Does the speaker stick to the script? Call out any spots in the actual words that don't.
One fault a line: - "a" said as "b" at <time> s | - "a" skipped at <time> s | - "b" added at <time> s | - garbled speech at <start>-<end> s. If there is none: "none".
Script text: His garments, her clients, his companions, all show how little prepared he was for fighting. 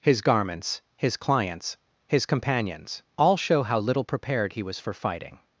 - "her" said as "his" at 1.0 s